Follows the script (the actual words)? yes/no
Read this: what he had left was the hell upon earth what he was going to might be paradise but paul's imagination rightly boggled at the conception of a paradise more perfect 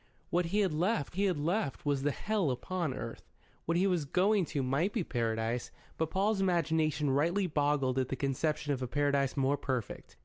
no